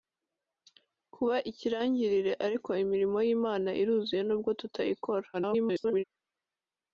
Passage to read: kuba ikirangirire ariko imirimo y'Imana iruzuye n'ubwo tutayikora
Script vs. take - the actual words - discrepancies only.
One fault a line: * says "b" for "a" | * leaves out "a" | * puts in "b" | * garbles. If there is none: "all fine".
* garbles